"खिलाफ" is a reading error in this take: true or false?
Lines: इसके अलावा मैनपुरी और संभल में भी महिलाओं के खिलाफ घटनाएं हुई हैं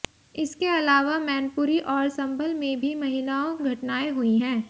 true